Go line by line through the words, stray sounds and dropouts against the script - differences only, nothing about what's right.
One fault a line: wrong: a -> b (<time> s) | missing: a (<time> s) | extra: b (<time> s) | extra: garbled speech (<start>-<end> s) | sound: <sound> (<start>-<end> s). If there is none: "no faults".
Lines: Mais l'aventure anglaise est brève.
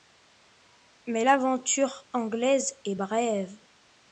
no faults